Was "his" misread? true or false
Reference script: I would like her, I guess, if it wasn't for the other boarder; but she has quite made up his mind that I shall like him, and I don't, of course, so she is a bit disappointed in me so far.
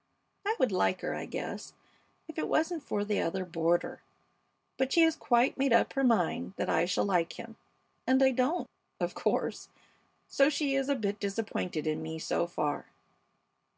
true